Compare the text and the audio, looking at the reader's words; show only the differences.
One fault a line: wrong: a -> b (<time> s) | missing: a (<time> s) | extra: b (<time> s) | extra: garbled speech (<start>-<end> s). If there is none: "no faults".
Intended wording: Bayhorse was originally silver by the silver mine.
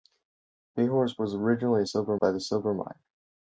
no faults